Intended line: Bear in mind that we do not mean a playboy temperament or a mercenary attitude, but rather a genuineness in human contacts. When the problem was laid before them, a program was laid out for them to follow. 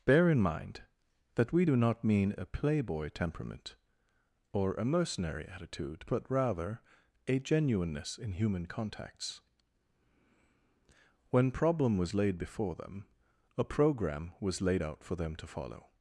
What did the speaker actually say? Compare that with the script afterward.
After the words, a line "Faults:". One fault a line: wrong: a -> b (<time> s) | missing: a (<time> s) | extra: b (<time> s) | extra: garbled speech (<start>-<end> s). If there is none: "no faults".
Bear in mind that we do not mean a playboy temperament or a mercenary attitude, but rather a genuineness in human contacts. When problem was laid before them, a program was laid out for them to follow.
Faults:
missing: the (11.5 s)